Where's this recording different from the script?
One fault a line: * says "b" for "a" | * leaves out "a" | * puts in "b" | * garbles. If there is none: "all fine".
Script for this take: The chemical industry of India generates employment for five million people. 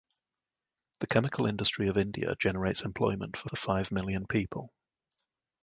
* puts in "for"